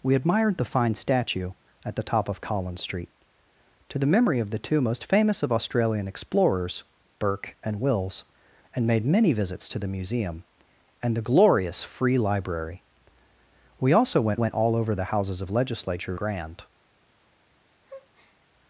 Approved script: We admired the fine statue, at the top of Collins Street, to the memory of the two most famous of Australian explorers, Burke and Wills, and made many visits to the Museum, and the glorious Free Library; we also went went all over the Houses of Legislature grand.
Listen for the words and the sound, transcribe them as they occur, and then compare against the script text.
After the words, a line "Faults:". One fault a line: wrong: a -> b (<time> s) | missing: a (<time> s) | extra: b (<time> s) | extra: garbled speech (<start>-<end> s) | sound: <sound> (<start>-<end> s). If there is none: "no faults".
We admired the fine statue, at the top of Collins Street, to the memory of the two most famous of Australian explorers, Burke and Wills, and made many visits to the Museum, and the glorious Free Library; we also went went all over the Houses of Legislature grand.
Faults:
sound: breath (17.8-18.4 s)